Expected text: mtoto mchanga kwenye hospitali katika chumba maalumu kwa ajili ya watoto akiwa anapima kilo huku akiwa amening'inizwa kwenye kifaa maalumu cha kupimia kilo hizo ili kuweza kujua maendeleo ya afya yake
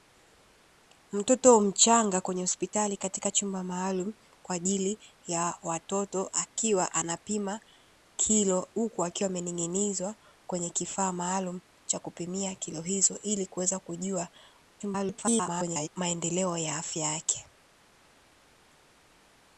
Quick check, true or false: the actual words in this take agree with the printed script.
false